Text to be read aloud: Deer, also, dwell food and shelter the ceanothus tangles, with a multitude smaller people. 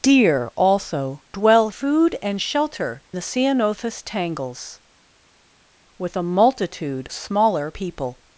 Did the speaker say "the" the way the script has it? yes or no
yes